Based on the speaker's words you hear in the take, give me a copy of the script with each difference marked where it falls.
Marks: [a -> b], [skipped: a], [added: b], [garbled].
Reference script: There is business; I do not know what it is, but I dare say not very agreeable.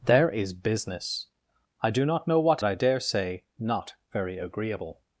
There is business; I do not know what [skipped: it is, but] I dare say not very agreeable.